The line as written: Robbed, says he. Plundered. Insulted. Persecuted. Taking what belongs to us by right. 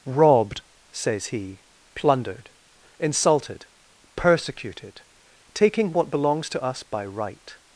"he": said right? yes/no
yes